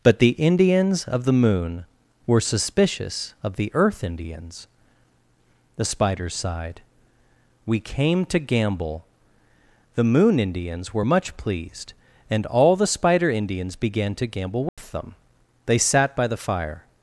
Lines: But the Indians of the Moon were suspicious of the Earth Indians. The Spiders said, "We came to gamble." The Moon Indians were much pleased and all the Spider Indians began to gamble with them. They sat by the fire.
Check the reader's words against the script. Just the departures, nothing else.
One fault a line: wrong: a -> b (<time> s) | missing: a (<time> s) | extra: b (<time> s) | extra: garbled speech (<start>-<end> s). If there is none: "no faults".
wrong: said -> sighed (6.3 s)